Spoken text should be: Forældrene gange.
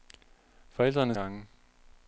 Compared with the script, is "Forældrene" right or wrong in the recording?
right